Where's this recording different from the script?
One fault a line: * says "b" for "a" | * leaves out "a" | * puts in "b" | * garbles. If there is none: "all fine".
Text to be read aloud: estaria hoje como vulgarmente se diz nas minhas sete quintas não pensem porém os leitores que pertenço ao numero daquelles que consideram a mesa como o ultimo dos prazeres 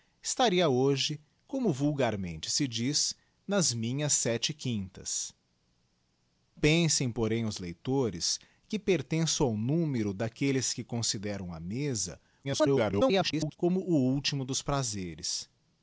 * leaves out "não"
* garbles